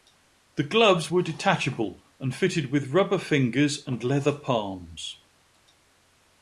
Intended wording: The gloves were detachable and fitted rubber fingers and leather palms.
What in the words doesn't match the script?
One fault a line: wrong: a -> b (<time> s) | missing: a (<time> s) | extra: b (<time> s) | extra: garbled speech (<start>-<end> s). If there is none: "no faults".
extra: with (2.7 s)